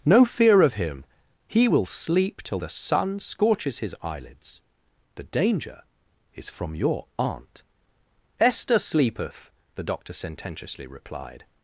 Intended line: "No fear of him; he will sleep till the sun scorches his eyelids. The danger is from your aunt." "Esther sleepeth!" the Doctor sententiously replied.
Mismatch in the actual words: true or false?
false